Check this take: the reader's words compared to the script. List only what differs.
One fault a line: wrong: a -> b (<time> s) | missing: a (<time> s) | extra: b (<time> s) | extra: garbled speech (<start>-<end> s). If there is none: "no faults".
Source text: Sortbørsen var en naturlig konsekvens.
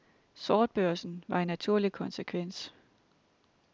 no faults